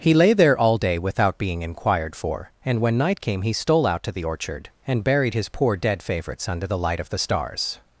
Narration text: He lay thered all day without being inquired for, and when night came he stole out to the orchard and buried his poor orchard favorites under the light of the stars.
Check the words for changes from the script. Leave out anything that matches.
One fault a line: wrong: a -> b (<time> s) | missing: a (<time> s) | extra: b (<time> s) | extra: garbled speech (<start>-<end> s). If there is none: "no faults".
wrong: thered -> there (0.3 s)
wrong: orchard -> dead (5.8 s)